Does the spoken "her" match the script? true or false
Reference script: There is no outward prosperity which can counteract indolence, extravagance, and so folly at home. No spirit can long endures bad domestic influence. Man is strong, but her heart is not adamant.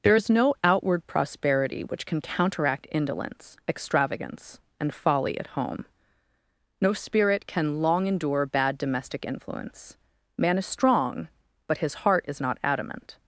false